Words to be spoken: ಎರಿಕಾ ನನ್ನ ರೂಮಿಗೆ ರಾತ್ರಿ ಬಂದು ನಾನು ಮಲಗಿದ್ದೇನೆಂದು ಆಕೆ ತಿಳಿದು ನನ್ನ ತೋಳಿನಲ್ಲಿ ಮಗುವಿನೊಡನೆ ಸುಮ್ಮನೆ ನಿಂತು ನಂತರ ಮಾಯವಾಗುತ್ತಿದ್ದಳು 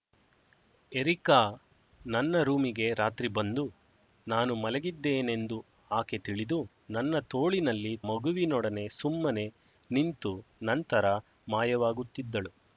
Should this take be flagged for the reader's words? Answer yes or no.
no